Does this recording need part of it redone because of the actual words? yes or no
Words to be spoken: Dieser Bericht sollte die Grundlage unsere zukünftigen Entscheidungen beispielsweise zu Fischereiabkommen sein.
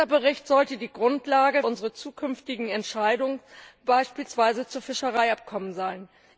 no